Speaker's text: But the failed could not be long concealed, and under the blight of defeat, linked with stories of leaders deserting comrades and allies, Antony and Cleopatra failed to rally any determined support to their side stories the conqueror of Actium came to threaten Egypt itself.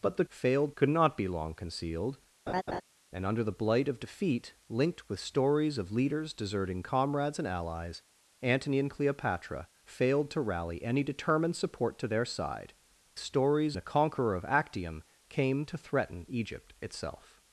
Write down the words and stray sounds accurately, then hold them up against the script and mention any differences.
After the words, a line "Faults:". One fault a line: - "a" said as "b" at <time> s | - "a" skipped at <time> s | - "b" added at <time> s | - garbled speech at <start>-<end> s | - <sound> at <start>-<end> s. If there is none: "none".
But the failed could not be long concealed, and under the blight of defeat, linked with stories of leaders deserting comrades and allies, Antony and Cleopatra failed to rally any determined support to their side stories the conqueror of Actium came to threaten Egypt itself.
Faults:
- laugh at 2.5-2.8 s